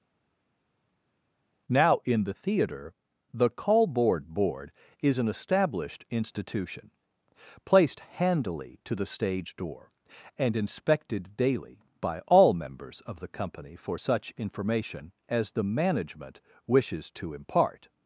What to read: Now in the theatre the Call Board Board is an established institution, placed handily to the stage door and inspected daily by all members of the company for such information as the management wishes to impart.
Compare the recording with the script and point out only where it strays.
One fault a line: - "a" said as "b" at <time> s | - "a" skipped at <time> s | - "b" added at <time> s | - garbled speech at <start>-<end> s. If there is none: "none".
none